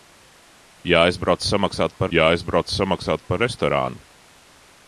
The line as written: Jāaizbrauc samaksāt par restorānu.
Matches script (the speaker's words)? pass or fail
fail